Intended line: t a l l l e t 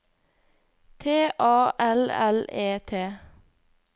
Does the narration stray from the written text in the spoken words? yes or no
yes